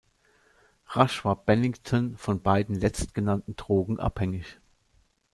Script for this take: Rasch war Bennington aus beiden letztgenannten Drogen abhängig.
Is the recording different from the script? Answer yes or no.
yes